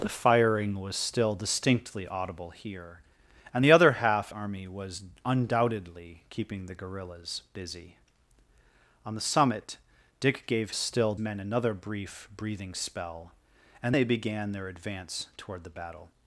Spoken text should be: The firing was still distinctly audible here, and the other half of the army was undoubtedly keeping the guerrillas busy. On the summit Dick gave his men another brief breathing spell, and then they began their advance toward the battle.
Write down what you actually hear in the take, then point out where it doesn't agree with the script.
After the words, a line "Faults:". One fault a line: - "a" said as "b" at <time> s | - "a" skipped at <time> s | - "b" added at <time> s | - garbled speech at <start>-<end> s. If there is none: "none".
The firing was still distinctly audible here, and the other half army was undoubtedly keeping the guerrillas busy. On the summit Dick gave still men another brief breathing spell, and they began their advance toward the battle.
Faults:
- "of the" skipped at 4.3 s
- "his" said as "still" at 10.7 s
- "then" skipped at 14.0 s